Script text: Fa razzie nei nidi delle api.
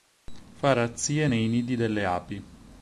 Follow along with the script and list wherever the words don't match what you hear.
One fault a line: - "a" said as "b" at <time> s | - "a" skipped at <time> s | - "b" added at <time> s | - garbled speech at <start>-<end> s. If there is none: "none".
none